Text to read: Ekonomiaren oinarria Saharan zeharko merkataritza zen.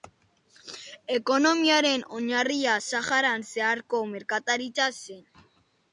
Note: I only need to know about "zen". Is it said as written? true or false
true